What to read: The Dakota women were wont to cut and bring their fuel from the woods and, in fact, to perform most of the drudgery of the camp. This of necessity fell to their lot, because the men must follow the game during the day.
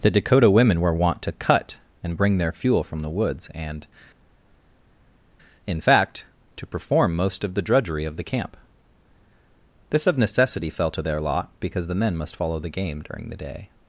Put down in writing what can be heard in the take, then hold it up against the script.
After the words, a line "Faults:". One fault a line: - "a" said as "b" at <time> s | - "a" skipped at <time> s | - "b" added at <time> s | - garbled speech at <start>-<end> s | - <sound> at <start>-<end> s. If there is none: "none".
The Dakota women were wont to cut and bring their fuel from the woods and, in fact, to perform most of the drudgery of the camp. This of necessity fell to their lot, because the men must follow the game during the day.
Faults:
none